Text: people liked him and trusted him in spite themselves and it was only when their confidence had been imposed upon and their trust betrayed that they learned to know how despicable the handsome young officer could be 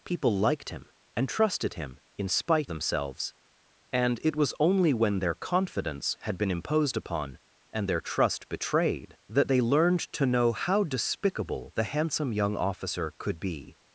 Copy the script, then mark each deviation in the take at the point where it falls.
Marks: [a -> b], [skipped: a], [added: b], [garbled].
people liked him and trusted him in spite themselves and it was only when their confidence had been imposed upon and their trust betrayed that they learned to know how despicable the handsome young officer could be